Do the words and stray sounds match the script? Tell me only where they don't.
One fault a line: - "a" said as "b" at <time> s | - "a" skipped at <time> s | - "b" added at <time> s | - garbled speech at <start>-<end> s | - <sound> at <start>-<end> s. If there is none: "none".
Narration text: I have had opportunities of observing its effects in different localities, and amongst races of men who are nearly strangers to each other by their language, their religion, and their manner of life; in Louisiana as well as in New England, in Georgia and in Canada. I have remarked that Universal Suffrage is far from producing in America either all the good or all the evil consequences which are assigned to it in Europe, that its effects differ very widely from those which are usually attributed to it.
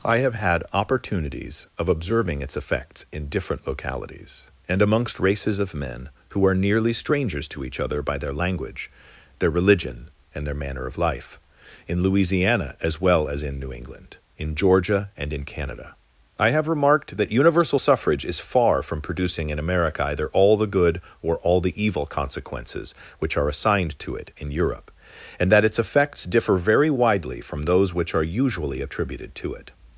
- "and" added at 25.4 s